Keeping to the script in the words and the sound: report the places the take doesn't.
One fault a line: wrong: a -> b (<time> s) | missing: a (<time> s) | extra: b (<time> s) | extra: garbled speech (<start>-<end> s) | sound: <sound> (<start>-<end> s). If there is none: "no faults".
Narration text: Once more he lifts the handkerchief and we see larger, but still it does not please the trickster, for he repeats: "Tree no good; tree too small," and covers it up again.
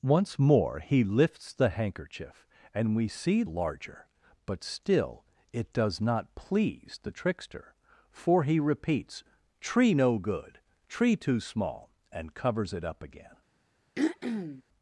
sound: throat clearing (14.0-14.6 s)